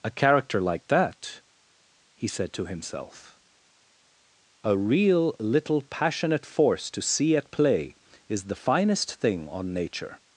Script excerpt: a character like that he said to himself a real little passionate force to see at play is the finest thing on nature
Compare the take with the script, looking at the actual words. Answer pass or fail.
pass